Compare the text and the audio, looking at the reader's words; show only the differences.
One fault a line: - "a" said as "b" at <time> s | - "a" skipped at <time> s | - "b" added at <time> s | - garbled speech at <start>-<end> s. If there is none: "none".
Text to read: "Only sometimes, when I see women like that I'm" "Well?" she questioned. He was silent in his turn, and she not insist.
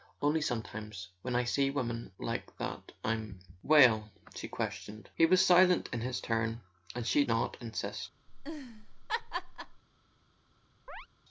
none